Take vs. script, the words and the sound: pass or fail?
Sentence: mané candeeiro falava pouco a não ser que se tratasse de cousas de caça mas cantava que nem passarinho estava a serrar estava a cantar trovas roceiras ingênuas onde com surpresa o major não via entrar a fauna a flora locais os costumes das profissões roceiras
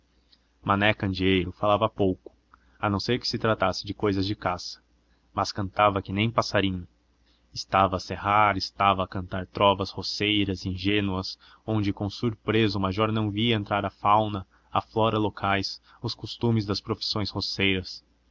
pass